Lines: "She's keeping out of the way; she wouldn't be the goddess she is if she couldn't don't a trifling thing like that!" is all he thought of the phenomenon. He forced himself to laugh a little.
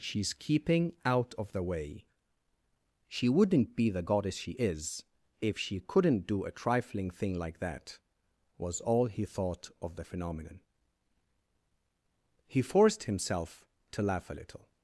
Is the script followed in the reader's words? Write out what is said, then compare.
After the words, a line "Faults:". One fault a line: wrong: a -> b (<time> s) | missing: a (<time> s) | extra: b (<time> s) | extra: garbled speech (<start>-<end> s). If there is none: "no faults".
"She's keeping out of the way; she wouldn't be the goddess she is if she couldn't do a trifling thing like that!" was all he thought of the phenomenon. He forced himself to laugh a little.
Faults:
wrong: don't -> do (6.3 s)
wrong: is -> was (8.6 s)